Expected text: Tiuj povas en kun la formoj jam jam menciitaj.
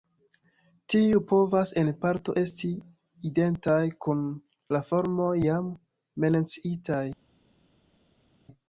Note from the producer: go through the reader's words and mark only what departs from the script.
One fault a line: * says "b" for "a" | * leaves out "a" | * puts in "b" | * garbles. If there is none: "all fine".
* puts in "parto esti identaj"
* leaves out "jam"